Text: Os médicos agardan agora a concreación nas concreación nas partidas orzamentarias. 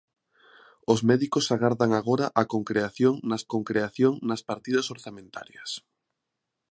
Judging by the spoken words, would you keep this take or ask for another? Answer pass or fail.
pass